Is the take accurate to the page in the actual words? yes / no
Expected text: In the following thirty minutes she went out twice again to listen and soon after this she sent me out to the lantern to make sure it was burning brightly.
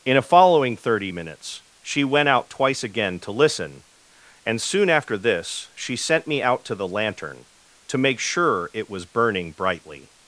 no